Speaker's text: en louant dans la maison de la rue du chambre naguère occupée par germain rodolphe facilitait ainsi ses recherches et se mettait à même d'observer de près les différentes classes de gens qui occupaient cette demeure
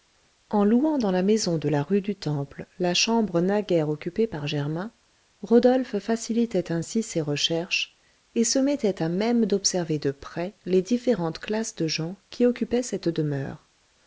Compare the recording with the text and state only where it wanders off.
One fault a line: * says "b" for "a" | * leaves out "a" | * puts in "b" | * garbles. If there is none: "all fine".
* puts in "temple la"